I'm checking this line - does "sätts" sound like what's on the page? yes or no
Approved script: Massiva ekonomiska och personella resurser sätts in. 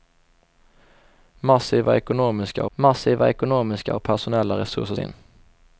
no